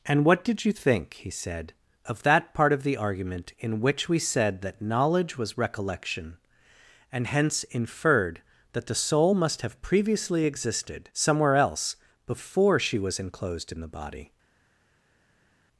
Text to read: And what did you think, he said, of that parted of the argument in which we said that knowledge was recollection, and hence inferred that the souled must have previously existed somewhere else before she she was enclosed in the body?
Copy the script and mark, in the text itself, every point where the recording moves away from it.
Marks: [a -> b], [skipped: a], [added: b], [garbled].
And what did you think, he said, of that [parted -> part] of the argument in which we said that knowledge was recollection, and hence inferred that the [souled -> soul] must have previously existed somewhere else before she [skipped: she] was enclosed in the body?